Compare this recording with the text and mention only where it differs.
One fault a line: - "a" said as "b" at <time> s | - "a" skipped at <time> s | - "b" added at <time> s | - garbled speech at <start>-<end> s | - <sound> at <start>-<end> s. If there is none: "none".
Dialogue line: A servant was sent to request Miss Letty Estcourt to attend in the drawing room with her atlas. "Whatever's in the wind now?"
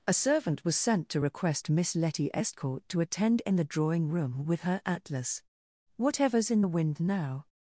none